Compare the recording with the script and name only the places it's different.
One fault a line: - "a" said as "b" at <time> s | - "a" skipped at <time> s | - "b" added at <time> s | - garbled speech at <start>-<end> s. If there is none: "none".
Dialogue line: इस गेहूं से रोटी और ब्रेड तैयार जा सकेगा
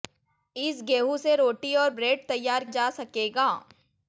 none